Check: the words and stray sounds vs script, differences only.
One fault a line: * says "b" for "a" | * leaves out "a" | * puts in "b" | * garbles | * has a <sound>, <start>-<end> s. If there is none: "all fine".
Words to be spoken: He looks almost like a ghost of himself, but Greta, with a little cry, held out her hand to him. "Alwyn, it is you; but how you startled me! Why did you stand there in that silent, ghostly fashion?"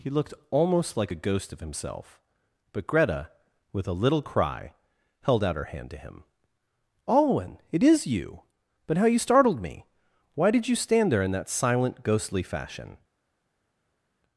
* says "looked" for "looks"